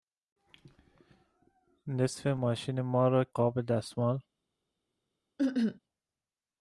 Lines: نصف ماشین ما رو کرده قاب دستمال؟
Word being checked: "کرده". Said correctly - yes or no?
no